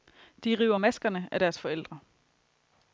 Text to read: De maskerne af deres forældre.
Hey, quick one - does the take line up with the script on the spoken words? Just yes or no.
no